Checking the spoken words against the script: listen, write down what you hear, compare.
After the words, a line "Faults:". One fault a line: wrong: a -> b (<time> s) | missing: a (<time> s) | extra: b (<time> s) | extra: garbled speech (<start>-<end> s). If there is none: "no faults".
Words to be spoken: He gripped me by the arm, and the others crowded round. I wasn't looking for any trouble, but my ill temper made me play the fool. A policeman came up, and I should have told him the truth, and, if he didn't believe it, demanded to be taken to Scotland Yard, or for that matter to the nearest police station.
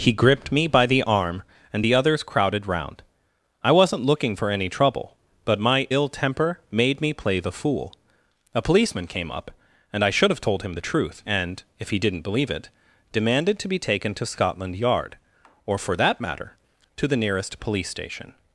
He gripped me by the arm, and the others crowded round. I wasn't looking for any trouble, but my ill temper made me play the fool. A policeman came up, and I should have told him the truth, and, if he didn't believe it, demanded to be taken to Scotland Yard, or for that matter to the nearest police station.
Faults:
no faults